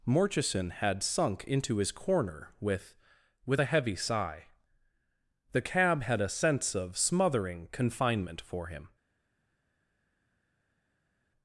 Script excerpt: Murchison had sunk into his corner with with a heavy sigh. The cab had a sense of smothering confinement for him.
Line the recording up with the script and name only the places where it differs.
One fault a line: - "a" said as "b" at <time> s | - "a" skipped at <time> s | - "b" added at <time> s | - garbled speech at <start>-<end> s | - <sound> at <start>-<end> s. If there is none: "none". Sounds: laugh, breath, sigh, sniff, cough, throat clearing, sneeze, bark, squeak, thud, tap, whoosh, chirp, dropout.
none